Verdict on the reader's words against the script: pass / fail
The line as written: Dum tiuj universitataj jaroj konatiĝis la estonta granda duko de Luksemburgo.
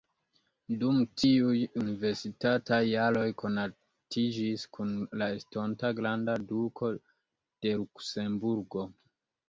fail